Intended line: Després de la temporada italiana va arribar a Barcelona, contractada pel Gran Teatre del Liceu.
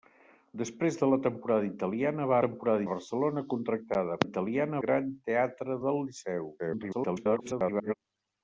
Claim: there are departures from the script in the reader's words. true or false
true